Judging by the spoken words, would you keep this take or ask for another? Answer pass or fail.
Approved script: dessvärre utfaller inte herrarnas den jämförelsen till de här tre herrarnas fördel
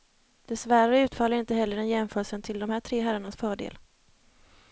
fail